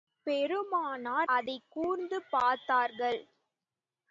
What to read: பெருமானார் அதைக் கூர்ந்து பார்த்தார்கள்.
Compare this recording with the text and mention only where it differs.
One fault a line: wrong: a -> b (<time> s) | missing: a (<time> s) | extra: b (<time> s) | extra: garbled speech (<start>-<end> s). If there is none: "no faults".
no faults